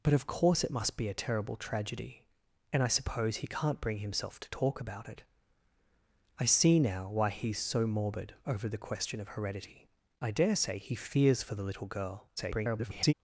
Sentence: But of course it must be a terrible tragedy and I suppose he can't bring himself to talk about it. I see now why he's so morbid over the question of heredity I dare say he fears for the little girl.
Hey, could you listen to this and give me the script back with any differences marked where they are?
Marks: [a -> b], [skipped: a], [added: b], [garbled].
But of course it must be a terrible tragedy and I suppose he can't bring himself to talk about it. I see now why he's so morbid over the question of heredity I dare say he fears for the little girl. [garbled]